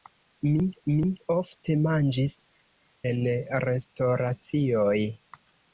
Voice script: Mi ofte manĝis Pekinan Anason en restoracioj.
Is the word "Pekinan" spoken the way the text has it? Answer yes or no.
no